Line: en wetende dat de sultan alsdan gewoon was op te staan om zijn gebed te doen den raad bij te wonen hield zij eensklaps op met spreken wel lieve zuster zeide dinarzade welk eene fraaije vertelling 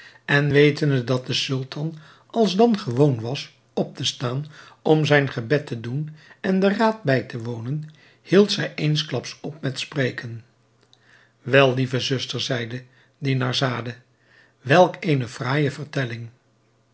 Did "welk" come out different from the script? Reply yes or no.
no